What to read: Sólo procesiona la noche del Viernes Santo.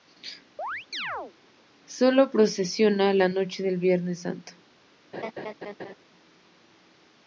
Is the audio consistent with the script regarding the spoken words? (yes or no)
yes